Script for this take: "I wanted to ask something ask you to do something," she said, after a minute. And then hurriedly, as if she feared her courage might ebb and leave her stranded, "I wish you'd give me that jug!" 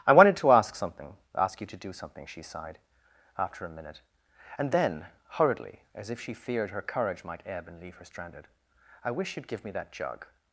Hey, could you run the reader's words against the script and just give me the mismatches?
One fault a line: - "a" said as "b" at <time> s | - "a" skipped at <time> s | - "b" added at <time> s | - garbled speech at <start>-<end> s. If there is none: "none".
- "said" said as "sighed" at 2.4 s